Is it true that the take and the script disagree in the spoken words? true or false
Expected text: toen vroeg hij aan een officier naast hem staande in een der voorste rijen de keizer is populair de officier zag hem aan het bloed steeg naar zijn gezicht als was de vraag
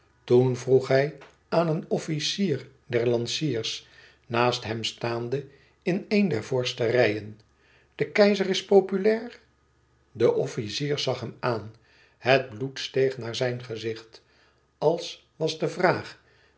true